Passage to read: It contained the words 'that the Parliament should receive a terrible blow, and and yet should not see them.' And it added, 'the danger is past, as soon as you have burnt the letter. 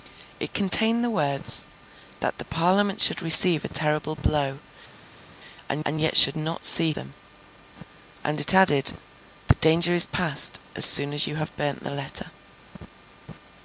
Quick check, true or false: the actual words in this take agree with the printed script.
true